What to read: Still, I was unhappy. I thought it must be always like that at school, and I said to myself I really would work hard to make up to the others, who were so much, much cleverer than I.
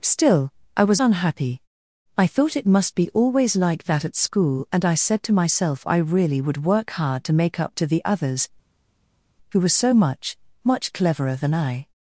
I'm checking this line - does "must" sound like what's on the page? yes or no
yes